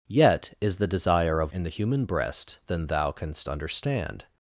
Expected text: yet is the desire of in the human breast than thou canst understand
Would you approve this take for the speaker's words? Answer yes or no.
yes